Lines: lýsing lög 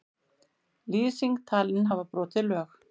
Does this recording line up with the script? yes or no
no